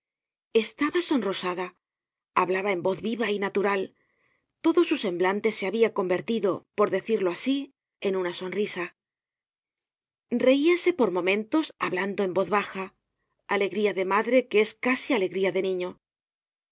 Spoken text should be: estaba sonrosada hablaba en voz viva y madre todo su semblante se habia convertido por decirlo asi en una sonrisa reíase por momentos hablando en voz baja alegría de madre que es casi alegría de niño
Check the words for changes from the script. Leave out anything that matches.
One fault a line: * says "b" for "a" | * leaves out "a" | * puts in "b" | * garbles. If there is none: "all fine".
* says "natural" for "madre"